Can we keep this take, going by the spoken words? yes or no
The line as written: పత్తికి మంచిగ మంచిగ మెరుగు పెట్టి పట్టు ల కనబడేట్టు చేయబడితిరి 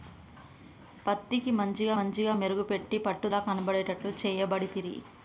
yes